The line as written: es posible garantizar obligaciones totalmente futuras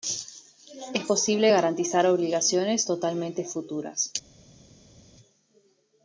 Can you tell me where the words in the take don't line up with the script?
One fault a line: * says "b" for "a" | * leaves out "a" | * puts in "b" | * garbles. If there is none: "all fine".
all fine